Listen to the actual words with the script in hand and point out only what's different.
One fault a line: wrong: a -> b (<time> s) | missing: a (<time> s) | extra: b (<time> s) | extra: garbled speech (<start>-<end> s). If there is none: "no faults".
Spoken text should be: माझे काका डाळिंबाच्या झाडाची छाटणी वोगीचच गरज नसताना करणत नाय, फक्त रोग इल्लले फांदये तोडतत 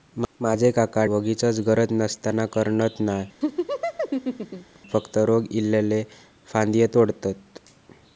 missing: डाळिंबाच्या झाडाची छाटणी (1.0 s)